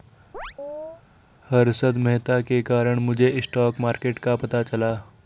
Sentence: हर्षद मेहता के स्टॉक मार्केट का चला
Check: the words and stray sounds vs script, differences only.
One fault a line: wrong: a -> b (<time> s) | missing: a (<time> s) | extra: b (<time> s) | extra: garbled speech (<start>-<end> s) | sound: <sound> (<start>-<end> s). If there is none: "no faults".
sound: chirp (0.3-1.0 s)
extra: कारण मुझे (2.6 s)
extra: पता (4.3 s)